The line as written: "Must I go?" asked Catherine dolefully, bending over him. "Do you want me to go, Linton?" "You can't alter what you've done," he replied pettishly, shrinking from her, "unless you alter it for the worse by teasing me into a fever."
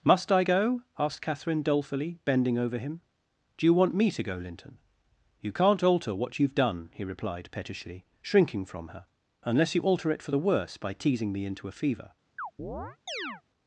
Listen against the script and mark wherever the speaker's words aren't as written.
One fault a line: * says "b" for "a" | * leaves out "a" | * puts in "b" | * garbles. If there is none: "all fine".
all fine